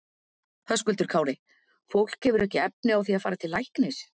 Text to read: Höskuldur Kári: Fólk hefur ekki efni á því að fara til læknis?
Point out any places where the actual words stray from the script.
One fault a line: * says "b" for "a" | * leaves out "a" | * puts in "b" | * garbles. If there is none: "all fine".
all fine